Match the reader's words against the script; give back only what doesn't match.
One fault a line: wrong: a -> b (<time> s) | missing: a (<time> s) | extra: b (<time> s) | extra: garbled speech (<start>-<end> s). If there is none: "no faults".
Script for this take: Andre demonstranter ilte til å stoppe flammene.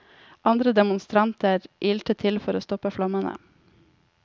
extra: for (2.4 s)